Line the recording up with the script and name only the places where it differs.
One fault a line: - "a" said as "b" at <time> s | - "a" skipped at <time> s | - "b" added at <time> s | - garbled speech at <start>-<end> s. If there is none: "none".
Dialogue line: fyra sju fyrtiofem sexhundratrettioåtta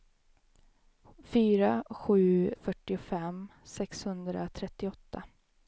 none